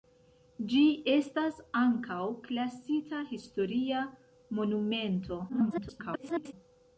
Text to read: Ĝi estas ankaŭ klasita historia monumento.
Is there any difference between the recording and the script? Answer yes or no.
yes